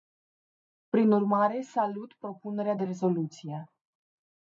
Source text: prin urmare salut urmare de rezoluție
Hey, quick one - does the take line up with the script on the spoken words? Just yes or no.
no